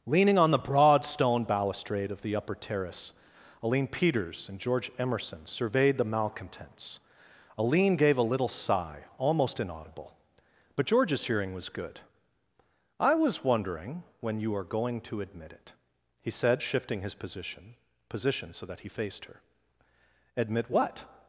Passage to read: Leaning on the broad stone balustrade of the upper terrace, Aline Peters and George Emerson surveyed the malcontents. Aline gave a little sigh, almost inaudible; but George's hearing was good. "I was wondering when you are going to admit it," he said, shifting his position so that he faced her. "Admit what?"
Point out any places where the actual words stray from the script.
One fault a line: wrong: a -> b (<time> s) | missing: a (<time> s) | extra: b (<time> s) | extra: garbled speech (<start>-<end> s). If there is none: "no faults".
extra: position (18.1 s)